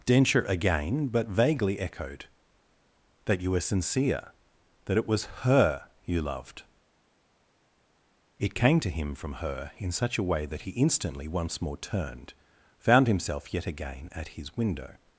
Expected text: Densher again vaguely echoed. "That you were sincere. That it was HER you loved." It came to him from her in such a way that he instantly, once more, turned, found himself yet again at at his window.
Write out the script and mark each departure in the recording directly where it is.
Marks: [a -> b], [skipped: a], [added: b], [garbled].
Densher again [added: but] vaguely echoed. "That you were sincere. That it was HER you loved." It came to him from her in such a way that he instantly, once more, turned, found himself yet again at [skipped: at] his window.